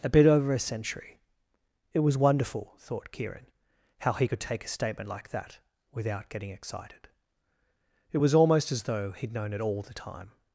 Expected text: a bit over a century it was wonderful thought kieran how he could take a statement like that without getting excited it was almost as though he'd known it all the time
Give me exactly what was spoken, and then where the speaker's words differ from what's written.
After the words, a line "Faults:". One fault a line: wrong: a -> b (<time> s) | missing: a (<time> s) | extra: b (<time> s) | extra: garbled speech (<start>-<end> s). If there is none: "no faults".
a bit over a century it was wonderful thought kieran how he could take a statement like that without getting excited it was almost as though he'd known it all the time
Faults:
no faults